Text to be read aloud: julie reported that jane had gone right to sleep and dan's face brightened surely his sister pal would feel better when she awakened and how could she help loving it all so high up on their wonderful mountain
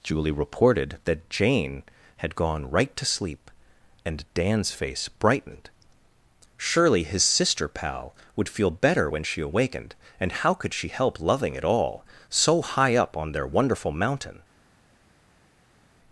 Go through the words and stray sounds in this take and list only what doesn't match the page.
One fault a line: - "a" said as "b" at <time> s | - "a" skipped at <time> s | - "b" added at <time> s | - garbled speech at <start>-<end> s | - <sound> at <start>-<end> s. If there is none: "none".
none